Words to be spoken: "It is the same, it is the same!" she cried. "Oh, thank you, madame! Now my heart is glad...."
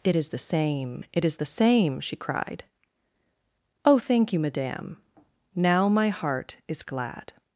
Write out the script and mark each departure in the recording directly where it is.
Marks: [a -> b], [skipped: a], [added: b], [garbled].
"It is the same, it is the same!" she cried. "Oh, thank you, madame! Now my heart is glad...."